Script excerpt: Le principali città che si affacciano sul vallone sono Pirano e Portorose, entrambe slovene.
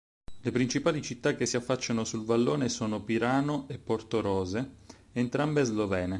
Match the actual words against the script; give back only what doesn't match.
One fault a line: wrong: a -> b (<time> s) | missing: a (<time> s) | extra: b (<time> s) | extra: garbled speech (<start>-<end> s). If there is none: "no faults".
no faults